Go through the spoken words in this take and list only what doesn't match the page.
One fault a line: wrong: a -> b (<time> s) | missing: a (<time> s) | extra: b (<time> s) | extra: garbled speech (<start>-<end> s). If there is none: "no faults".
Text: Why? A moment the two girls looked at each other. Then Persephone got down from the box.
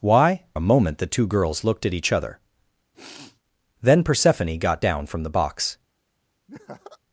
no faults